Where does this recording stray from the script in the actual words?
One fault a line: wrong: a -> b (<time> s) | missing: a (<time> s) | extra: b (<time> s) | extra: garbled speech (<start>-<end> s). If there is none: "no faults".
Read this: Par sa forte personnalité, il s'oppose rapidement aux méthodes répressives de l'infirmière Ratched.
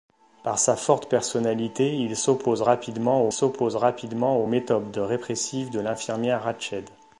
extra: s'oppose rapidement aux (3.3 s)